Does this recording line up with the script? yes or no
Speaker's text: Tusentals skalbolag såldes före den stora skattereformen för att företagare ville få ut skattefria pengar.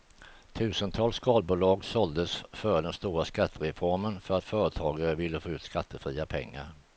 yes